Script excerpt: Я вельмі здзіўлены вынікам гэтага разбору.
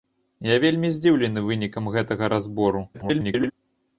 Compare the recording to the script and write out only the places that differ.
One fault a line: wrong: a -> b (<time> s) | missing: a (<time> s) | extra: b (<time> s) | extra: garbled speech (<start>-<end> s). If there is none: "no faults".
extra: garbled speech (2.9-3.5 s)